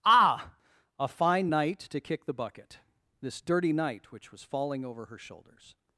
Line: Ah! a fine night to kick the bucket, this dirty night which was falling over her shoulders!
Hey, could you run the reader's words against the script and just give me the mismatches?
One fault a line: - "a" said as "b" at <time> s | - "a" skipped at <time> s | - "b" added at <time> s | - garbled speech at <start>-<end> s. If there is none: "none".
none